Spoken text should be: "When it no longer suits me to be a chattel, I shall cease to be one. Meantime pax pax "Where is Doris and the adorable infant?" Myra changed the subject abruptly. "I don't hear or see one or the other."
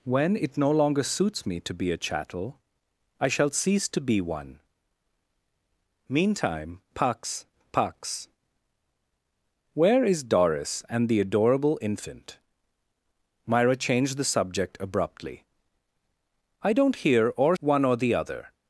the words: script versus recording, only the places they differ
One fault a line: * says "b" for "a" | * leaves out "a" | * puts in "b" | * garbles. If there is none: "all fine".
* leaves out "see"